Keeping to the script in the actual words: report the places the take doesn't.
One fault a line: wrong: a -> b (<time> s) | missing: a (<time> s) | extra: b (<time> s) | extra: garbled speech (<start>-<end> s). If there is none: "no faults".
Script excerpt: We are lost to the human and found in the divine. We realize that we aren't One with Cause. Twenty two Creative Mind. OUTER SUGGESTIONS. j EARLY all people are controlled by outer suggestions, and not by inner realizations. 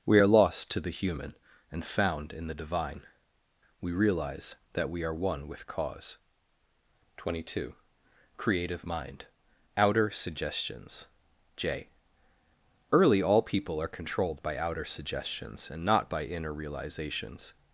wrong: aren't -> are (5.0 s)